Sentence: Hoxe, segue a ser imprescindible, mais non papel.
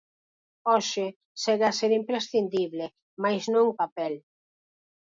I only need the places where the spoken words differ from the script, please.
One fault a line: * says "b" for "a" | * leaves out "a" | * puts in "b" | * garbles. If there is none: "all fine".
all fine